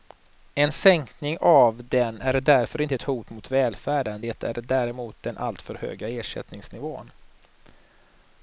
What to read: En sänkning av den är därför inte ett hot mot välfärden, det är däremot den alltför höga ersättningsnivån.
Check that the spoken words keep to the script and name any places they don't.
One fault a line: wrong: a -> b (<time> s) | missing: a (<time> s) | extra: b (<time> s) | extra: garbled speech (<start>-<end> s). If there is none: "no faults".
no faults